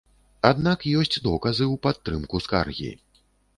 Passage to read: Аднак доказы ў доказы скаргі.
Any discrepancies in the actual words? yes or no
yes